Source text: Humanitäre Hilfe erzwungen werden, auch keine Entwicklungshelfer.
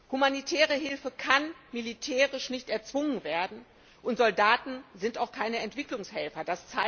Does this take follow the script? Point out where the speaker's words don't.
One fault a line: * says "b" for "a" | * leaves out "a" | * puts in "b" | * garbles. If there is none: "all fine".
* puts in "kann militärisch nicht"
* puts in "und Soldaten sind"